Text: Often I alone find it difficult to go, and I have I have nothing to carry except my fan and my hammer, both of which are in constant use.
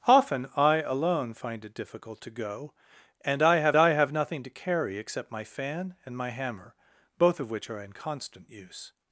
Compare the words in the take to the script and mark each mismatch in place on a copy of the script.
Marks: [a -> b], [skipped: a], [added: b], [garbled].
Often I alone find it difficult to go, and I have I have nothing to carry except my fan and my hammer, both of which are in constant use.